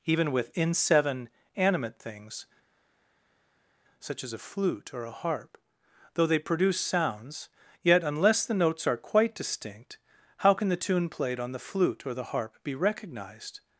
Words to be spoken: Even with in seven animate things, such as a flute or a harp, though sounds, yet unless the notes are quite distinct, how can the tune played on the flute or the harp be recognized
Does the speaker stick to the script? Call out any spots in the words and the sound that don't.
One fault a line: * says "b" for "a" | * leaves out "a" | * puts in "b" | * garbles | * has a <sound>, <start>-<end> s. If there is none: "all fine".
* puts in "they produce"